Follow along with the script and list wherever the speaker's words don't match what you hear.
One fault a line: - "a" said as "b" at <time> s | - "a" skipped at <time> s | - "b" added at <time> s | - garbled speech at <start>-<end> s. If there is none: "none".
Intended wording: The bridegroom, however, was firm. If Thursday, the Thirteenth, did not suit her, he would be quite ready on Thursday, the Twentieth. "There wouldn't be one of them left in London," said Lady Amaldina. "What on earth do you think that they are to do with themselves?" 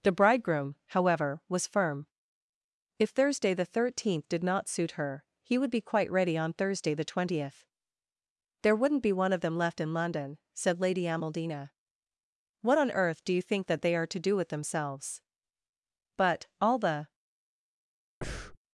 - "But all the" added at 16.1 s